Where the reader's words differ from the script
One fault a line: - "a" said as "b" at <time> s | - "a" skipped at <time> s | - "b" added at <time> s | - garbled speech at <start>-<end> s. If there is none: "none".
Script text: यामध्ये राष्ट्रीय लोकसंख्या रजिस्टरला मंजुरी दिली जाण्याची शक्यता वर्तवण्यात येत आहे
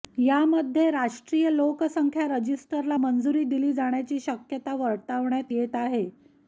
none